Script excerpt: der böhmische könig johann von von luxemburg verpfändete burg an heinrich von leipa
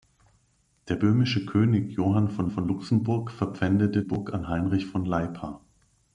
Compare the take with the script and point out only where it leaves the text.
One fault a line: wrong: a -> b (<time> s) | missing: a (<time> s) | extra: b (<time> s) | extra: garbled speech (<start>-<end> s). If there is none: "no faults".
no faults